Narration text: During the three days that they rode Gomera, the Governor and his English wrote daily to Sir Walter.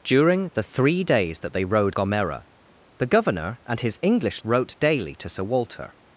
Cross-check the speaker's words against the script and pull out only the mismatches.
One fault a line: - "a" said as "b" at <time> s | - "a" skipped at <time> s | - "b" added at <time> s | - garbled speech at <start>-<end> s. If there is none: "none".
none